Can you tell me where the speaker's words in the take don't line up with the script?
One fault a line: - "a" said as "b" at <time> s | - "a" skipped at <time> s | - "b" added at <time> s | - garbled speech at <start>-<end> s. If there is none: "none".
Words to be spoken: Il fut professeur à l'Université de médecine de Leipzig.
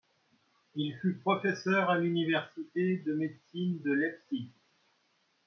none